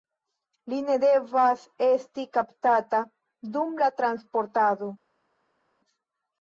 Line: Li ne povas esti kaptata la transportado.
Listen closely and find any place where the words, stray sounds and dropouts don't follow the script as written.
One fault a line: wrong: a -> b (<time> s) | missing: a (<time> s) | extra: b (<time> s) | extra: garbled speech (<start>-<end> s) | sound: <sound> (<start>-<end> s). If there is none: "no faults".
wrong: povas -> devas (1.0 s)
extra: dum (3.6 s)